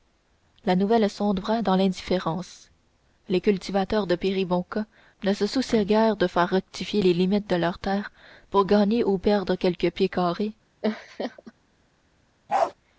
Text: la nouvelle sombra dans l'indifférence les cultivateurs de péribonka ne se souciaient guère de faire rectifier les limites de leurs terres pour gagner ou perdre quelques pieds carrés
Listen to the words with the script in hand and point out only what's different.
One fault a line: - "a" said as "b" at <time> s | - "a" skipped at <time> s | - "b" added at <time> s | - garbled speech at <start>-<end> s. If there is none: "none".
none